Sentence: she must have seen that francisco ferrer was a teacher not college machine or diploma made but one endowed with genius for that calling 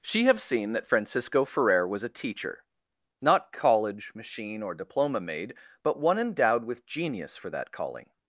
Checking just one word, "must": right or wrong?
wrong